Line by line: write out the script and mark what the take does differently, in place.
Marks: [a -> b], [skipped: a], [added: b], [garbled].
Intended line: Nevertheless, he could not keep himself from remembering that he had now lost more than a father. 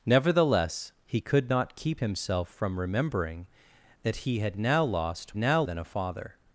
Nevertheless, he could not keep himself from remembering that he had now lost [more -> now] than a father.